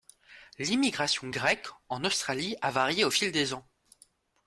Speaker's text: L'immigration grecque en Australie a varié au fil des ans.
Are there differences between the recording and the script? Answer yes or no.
no